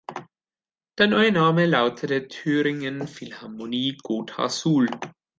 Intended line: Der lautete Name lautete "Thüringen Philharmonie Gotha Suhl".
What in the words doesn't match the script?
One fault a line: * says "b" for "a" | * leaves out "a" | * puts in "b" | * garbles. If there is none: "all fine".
* says "neue" for "lautete"